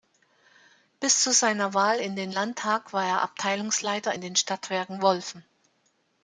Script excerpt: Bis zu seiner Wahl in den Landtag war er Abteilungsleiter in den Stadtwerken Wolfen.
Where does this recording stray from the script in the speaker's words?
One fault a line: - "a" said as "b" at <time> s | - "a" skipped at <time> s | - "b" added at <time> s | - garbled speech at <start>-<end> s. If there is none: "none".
none